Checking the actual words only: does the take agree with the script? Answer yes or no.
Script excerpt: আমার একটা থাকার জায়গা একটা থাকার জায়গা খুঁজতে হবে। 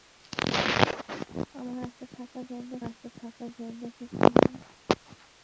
yes